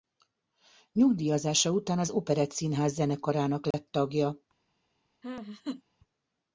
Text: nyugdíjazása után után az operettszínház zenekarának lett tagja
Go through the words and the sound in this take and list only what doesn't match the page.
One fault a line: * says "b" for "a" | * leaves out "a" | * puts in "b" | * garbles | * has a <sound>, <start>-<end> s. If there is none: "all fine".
* leaves out "után"
* has a dropout, 3.7-3.7 s
* has a laugh, 5.2-5.8 s